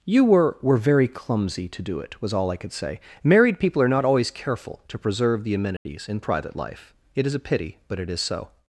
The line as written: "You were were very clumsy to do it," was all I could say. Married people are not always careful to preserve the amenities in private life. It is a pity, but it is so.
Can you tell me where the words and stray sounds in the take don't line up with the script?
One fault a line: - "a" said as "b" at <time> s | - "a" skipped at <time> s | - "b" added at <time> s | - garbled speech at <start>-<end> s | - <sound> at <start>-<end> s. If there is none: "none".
- dropout at 5.8-5.9 s